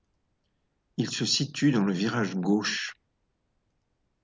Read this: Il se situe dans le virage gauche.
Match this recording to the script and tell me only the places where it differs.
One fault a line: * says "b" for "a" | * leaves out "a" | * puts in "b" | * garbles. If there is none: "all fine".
all fine